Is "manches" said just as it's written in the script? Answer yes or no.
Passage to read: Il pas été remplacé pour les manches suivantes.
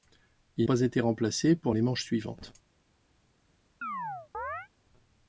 yes